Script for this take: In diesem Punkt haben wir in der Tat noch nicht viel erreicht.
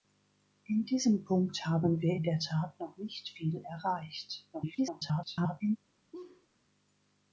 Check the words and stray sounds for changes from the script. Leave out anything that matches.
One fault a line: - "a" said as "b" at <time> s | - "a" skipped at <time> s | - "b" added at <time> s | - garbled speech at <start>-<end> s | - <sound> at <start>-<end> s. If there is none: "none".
- garbled speech at 4.5-5.8 s
- laugh at 6.1-6.5 s